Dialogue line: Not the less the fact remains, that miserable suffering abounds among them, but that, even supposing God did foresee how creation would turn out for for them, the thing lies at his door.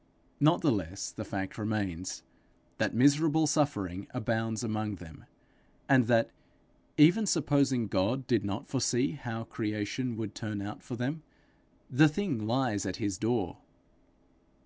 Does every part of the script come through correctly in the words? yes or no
no